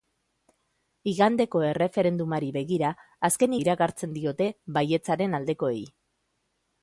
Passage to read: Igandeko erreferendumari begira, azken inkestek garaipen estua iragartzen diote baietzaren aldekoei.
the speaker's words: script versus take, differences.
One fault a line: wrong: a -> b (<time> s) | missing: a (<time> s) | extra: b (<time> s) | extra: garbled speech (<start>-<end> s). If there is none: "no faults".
missing: inkestek garaipen estua (3.5 s)